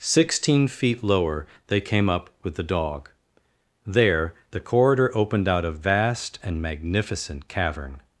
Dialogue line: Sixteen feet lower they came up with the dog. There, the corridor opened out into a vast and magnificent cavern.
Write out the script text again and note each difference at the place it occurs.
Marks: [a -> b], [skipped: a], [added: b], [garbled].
Sixteen feet lower they came up with the dog. There, the corridor opened out [skipped: into] a vast and magnificent cavern.